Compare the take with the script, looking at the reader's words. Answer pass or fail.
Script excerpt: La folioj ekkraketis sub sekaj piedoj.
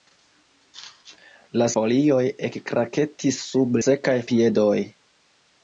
pass